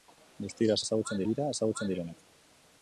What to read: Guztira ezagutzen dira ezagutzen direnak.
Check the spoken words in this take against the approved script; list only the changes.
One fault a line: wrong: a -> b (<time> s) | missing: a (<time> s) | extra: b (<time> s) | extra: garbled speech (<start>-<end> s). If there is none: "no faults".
no faults